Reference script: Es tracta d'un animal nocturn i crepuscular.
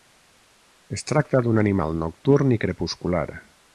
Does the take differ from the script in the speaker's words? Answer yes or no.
no